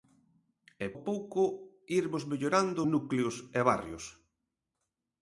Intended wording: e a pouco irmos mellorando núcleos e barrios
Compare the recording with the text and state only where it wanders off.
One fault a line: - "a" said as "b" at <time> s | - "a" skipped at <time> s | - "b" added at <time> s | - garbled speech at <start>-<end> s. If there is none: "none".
none